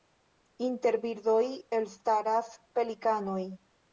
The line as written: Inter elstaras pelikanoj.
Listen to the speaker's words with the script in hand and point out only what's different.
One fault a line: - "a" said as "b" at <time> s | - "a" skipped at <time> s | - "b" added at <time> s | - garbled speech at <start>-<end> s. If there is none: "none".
- "birdoj" added at 1.0 s